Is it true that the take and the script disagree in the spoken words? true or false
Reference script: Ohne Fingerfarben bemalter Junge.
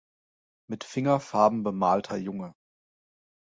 true